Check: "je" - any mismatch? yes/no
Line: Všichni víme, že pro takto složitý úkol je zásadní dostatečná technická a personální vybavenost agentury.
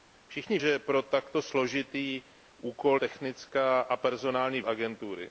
yes